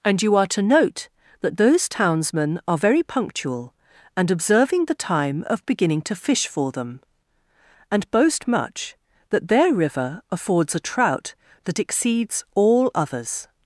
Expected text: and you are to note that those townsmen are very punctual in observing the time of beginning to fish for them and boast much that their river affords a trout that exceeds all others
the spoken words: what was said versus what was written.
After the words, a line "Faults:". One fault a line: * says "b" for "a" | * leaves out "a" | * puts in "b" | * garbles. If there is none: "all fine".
and you are to note that those townsmen are very punctual and observing the time of beginning to fish for them and boast much that their river affords a trout that exceeds all others
Faults:
* says "and" for "in"